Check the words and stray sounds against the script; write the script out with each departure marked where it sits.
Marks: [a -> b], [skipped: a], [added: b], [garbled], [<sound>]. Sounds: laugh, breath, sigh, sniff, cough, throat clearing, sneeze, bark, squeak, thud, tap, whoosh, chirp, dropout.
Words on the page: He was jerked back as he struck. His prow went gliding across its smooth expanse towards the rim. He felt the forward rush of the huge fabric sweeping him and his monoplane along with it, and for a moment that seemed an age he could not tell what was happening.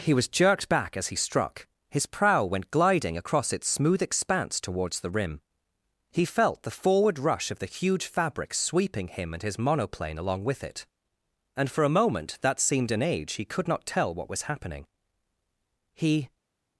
He was jerked back as he struck. His prow went gliding across its smooth expanse towards the rim. He felt the forward rush of the huge fabric sweeping him and his monoplane along with it, and for a moment that seemed an age he could not tell what was happening. [added: He]